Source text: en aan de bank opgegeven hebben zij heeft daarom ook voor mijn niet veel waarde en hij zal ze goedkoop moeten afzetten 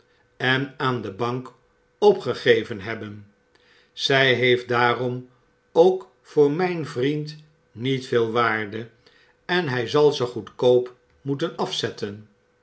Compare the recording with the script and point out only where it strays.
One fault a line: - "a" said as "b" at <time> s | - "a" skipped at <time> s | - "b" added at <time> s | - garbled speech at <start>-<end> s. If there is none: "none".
- "vriend" added at 6.9 s